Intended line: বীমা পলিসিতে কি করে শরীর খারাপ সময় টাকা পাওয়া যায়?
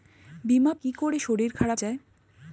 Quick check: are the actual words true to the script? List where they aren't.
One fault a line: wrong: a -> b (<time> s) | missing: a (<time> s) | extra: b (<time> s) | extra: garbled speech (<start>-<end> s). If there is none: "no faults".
missing: পলিসিতে (0.7 s)
missing: সময় টাকা পাওয়া (1.8 s)